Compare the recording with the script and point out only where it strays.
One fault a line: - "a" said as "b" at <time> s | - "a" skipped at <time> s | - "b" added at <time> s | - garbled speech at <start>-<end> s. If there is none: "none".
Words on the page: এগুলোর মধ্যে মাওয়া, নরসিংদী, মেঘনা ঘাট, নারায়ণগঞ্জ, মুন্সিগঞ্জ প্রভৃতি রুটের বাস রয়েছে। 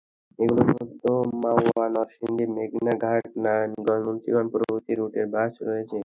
none